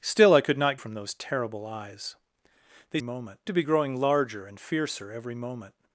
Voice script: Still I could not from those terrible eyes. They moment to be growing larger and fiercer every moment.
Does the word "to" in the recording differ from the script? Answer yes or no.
no